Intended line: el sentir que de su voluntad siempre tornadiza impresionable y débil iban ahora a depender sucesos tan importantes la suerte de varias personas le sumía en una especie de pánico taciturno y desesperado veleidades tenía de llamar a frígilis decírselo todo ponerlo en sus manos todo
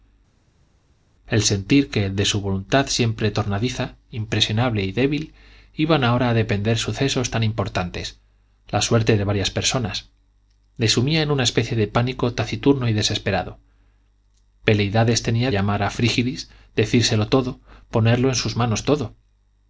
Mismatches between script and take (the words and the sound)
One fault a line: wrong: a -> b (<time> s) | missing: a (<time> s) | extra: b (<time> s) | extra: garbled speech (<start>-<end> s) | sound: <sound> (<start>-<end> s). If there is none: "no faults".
missing: de (15.5 s)